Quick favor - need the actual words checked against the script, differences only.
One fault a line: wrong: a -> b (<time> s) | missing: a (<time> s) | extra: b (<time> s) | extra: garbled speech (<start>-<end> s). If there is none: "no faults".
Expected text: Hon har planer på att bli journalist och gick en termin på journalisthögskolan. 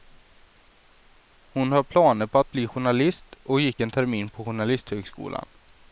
no faults